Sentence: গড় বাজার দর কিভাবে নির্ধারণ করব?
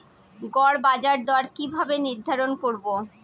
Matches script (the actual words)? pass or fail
pass